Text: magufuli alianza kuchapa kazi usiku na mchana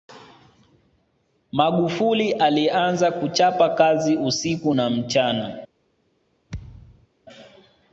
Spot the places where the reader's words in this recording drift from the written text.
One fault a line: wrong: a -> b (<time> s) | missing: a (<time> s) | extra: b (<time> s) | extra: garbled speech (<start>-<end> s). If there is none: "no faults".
no faults